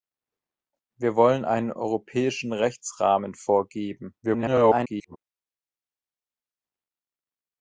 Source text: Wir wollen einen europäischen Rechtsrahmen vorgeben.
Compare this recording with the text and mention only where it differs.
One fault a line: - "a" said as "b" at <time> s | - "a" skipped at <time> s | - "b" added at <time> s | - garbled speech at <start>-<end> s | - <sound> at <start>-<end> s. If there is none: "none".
- garbled speech at 4.2-5.2 s